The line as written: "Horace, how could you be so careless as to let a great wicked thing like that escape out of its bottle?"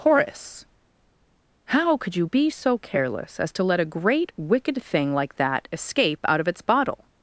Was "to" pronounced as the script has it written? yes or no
yes